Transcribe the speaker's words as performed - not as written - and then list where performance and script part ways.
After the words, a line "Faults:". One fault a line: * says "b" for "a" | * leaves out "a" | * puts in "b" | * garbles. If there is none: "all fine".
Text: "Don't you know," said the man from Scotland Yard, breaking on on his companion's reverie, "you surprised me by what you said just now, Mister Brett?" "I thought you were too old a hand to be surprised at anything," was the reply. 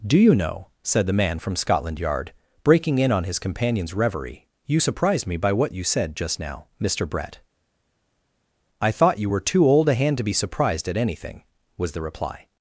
"Do you know," said the man from Scotland Yard, breaking in on his companion's reverie, "you surprised me by what you said just now, Mister Brett?" "I thought you were too old a hand to be surprised at anything," was the reply.
Faults:
* says "Do" for "Don't"
* says "in" for "on"